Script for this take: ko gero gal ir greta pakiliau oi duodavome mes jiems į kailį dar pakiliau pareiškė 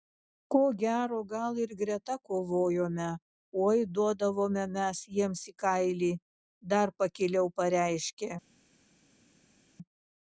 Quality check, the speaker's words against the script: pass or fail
fail